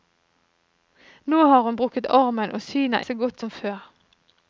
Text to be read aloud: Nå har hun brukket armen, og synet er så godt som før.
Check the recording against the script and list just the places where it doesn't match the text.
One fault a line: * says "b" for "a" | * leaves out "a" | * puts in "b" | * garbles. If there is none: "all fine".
all fine